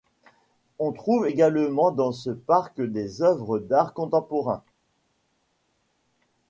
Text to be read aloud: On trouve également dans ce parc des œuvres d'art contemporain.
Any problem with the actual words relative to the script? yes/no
no